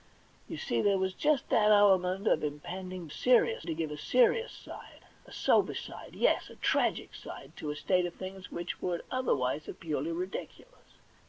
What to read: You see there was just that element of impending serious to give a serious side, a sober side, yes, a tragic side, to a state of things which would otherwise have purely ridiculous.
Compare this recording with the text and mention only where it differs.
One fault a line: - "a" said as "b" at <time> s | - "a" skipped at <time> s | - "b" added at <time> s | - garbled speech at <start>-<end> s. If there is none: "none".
none